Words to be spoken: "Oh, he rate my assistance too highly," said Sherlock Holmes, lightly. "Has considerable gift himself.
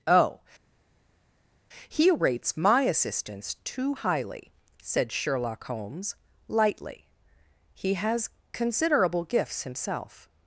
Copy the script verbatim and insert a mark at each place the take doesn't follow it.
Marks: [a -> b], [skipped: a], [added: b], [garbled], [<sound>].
"Oh, he [rate -> rates] my assistance too highly," said Sherlock Holmes, lightly. [added: He] "Has considerable [gift -> gifts] himself.